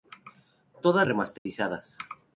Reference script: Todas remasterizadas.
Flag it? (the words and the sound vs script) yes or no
yes